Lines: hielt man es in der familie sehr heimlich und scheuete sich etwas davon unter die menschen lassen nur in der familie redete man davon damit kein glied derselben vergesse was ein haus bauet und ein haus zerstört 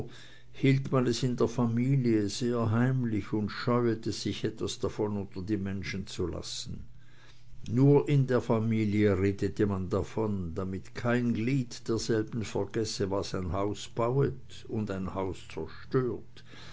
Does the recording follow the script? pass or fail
fail